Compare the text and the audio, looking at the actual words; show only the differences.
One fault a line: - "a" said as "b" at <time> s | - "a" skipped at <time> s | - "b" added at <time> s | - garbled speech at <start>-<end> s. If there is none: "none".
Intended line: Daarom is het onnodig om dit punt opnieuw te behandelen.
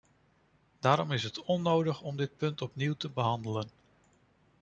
none